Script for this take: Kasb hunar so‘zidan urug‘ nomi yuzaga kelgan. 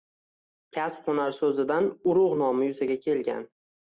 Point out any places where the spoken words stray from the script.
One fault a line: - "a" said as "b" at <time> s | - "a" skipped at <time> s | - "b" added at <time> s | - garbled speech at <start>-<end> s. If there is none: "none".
none